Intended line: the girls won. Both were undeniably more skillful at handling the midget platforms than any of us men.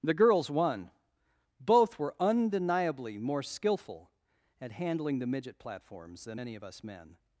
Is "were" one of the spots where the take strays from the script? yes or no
no